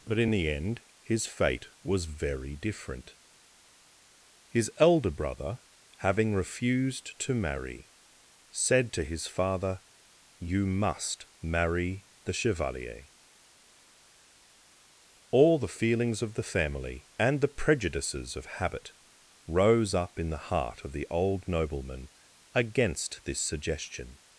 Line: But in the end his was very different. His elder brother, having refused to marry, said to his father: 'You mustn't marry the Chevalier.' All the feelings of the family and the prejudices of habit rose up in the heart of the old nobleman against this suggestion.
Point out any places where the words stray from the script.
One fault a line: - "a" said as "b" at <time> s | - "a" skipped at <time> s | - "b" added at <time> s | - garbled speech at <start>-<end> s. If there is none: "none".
- "fate" added at 1.3 s
- "mustn't" said as "must" at 10.7 s